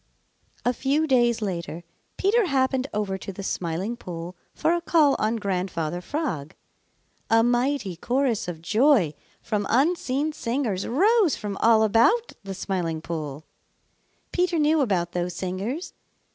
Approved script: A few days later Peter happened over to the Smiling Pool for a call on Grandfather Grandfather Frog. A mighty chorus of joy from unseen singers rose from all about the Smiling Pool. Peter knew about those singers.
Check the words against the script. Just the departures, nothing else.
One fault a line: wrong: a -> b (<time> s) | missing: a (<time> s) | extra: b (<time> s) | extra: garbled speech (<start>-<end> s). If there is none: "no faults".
missing: Grandfather (6.0 s)